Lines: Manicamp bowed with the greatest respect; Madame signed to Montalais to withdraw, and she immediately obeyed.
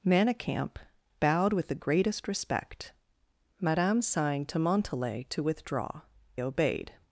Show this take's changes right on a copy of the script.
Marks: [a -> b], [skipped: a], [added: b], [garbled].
Manicamp bowed with the greatest respect; Madame signed to Montalais to withdraw, [skipped: and she immediately] obeyed.